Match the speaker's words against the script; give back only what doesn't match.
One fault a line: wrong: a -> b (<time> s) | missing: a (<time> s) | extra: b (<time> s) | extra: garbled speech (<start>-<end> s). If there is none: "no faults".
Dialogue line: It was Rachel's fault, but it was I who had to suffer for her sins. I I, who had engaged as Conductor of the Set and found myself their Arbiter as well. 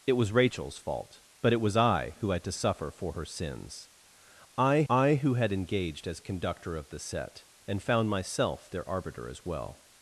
no faults